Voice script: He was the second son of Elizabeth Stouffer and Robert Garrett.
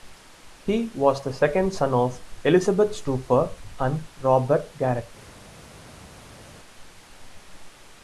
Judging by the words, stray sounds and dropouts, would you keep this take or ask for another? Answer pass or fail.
pass